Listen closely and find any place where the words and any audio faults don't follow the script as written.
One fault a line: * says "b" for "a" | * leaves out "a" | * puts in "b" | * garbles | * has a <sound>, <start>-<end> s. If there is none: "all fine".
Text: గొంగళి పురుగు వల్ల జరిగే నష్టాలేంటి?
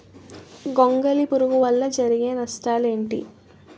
all fine